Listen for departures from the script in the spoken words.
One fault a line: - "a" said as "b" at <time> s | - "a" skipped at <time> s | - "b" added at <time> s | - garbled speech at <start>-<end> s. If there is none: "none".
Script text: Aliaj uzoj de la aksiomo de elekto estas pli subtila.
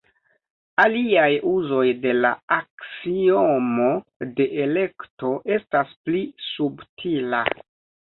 none